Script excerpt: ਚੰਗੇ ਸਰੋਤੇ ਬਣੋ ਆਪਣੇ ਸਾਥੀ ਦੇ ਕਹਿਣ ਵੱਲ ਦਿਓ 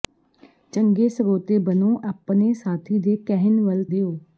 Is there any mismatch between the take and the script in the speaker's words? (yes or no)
no